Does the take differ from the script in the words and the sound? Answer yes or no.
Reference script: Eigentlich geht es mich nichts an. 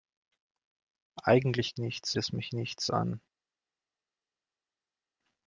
yes